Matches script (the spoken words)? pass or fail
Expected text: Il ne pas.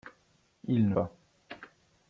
pass